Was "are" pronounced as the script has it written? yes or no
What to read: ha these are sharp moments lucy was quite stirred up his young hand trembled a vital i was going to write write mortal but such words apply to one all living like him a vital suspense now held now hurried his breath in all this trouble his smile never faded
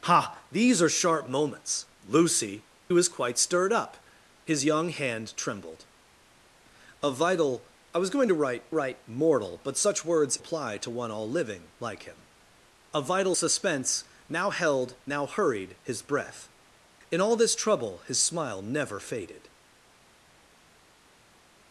yes